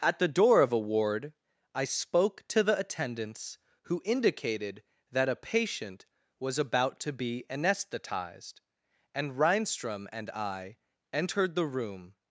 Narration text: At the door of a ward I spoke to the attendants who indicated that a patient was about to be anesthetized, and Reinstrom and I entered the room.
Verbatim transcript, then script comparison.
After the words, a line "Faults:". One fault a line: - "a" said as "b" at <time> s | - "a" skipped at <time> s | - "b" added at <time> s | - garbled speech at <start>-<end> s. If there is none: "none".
At the door of a ward I spoke to the attendants who indicated that a patient was about to be anesthetized, and Reinstrom and I entered the room.
Faults:
none